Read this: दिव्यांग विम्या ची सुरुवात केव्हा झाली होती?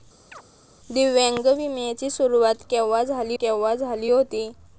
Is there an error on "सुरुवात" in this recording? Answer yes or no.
no